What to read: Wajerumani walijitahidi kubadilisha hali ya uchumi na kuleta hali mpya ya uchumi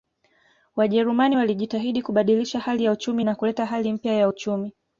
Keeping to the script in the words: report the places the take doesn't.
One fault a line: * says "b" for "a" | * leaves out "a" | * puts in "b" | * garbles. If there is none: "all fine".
all fine